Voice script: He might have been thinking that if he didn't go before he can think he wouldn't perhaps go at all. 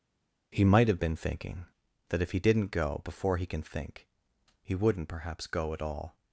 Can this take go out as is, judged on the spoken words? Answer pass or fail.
pass